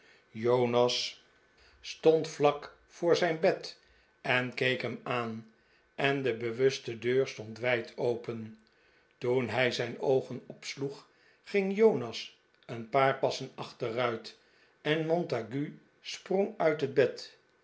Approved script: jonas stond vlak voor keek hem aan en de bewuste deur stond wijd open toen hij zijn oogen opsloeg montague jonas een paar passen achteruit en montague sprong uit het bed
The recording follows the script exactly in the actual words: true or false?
false